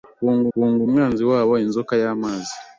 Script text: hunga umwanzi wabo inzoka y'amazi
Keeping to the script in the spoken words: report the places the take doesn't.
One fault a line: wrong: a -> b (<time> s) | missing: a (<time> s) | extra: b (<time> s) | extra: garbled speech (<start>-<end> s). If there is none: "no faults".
extra: hunga (0.5 s)